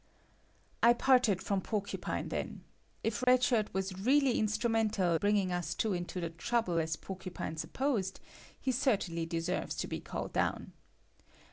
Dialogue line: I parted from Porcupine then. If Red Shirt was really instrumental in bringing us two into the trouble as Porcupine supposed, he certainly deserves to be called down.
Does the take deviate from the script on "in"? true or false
true